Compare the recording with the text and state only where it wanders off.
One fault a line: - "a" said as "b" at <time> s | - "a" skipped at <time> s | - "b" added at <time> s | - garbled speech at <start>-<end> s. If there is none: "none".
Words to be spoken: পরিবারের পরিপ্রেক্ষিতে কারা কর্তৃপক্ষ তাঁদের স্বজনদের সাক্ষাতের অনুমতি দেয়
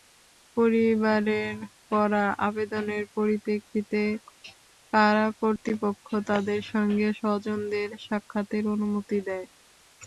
- "করা আবেদনের" added at 1.9 s
- "সঙ্গে" added at 6.7 s